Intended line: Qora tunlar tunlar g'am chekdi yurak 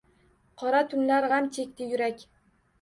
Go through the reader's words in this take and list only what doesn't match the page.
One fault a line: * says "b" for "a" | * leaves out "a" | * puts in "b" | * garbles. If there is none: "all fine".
* leaves out "tunlar"